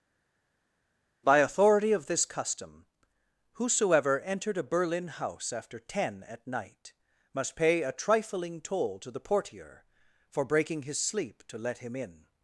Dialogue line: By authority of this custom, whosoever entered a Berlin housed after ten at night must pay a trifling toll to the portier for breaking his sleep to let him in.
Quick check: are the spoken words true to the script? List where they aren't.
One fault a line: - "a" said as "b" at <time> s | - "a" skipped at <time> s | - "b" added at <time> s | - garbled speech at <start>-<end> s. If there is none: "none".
- "housed" said as "house" at 5.1 s